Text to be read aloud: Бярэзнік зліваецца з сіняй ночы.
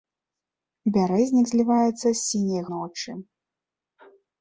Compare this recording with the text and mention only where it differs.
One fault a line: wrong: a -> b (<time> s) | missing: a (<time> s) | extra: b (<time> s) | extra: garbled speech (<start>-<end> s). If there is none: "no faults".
no faults